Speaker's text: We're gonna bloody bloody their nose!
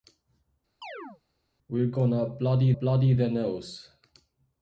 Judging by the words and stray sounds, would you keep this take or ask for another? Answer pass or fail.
fail